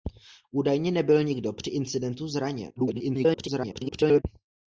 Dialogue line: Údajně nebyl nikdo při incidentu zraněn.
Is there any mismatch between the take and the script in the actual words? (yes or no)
yes